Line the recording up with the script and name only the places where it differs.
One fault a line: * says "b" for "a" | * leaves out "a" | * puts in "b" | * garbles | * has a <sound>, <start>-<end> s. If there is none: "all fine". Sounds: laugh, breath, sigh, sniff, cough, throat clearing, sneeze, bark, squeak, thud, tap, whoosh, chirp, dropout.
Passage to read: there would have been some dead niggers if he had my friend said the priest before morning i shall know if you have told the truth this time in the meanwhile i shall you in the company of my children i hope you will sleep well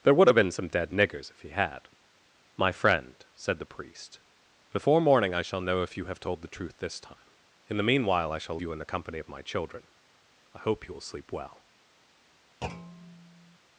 * has a thud, 12.6-13.6 s